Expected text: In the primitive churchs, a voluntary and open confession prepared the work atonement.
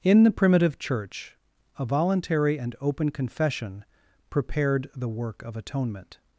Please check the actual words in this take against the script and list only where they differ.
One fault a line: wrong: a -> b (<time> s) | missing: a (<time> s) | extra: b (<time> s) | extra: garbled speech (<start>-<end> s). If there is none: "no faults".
wrong: churchs -> church (0.8 s)
extra: of (5.4 s)